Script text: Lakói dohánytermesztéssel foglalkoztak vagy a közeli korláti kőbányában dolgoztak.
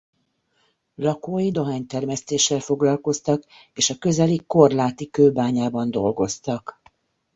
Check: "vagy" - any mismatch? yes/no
yes